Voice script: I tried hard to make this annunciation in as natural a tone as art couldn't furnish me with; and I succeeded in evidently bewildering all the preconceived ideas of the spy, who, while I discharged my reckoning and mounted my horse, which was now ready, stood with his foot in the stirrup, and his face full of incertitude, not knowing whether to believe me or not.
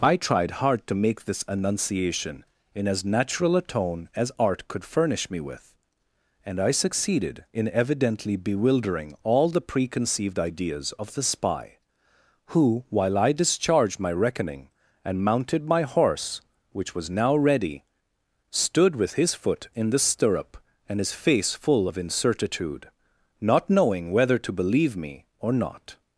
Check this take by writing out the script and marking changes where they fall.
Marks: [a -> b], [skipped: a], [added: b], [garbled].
I tried hard to make this annunciation in as natural a tone as art [couldn't -> could] furnish me with; and I succeeded in evidently bewildering all the preconceived ideas of the spy, who, while I discharged my reckoning and mounted my horse, which was now ready, stood with his foot in the stirrup, and his face full of incertitude, not knowing whether to believe me or not.